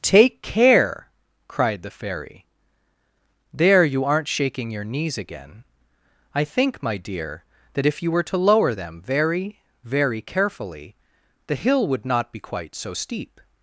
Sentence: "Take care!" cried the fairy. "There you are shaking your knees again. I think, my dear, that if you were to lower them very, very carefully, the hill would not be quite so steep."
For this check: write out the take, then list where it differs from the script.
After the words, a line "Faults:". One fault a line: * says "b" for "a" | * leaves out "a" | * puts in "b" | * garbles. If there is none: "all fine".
"Take care!" cried the fairy. "There you aren't shaking your knees again. I think, my dear, that if you were to lower them very, very carefully, the hill would not be quite so steep."
Faults:
* says "aren't" for "are"